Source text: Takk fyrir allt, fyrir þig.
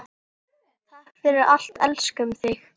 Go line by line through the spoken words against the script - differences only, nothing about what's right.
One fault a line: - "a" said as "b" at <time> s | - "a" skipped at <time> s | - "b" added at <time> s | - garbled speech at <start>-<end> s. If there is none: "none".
- "fyrir" said as "elskum" at 1.9 s